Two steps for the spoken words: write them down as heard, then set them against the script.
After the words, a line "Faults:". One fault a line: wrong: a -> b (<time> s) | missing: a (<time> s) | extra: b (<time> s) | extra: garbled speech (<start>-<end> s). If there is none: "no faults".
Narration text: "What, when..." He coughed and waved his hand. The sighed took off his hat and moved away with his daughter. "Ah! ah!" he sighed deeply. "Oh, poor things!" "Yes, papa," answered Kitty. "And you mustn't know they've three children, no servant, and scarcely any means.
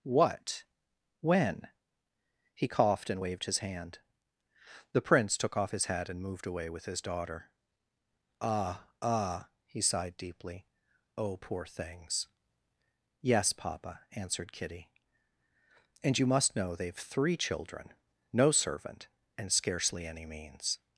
"What, when..." He coughed and waved his hand. The prince took off his hat and moved away with his daughter. "Ah! ah!" he sighed deeply. "Oh, poor things!" "Yes, papa," answered Kitty. "And you must know they've three children, no servant, and scarcely any means.
Faults:
wrong: sighed -> prince (5.0 s)
wrong: mustn't -> must (16.3 s)